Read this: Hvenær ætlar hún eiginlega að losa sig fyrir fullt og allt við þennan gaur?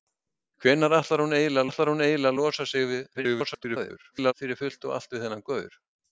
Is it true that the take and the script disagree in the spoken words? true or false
true